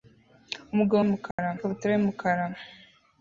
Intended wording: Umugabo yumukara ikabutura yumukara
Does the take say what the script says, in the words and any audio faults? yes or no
no